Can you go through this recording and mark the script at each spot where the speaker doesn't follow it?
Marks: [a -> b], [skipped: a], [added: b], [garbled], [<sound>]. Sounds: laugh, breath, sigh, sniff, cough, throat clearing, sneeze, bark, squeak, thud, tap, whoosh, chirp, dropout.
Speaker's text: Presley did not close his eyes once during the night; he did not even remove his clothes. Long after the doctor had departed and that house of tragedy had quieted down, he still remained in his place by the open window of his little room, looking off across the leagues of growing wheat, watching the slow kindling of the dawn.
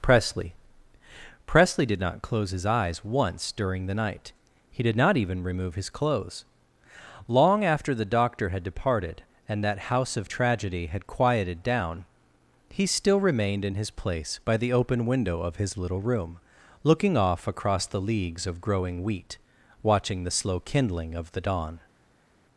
Presley [added: presley] did not close his eyes once during the night; he did not even remove his clothes. Long after the doctor had departed and that house of tragedy had quieted down, he still remained in his place by the open window of his little room, looking off across the leagues of growing wheat, watching the slow kindling of the dawn.